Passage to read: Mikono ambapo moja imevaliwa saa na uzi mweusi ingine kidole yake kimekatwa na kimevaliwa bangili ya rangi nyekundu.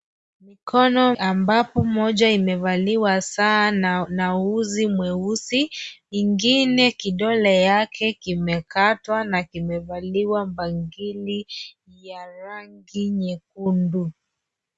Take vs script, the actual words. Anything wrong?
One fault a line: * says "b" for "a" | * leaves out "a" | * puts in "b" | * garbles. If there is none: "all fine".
all fine